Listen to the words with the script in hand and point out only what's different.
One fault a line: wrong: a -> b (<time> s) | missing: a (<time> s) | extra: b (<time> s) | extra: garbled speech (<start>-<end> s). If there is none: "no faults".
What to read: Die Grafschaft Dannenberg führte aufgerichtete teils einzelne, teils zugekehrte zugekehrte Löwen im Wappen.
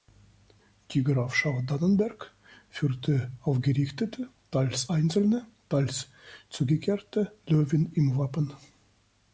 missing: zugekehrte (7.3 s)